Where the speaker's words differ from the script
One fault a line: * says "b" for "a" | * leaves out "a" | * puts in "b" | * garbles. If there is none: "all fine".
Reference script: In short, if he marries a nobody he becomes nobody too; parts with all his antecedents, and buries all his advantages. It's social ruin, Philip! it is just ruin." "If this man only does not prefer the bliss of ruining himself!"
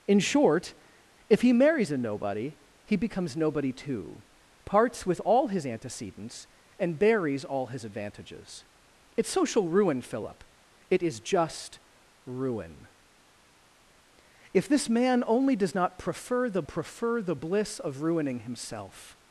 * puts in "prefer the"